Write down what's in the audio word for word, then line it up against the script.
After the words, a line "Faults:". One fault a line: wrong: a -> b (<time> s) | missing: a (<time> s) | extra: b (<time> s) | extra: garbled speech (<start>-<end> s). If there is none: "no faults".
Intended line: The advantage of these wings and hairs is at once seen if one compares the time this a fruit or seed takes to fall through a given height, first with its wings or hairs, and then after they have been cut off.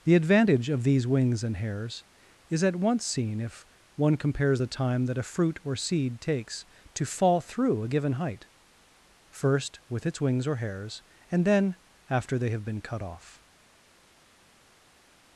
The advantage of these wings and hairs is at once seen if one compares the time that a fruit or seed takes to fall through a given height, first with its wings or hairs, and then after they have been cut off.
Faults:
wrong: this -> that (5.1 s)